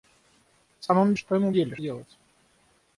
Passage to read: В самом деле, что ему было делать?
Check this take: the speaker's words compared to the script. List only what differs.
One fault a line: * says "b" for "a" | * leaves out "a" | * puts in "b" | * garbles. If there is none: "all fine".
* leaves out "деле"
* says "деле" for "было"